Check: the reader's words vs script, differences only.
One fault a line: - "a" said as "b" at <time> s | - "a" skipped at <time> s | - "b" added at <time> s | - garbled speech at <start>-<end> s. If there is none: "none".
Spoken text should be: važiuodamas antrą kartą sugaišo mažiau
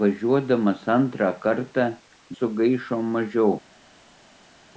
none